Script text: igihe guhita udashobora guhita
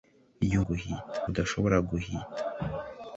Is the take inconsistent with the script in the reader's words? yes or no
no